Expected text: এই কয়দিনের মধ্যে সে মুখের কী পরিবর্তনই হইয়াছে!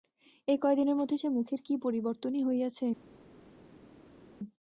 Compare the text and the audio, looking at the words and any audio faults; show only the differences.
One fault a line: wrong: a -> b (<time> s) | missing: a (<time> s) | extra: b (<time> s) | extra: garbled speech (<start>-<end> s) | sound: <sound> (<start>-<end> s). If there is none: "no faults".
no faults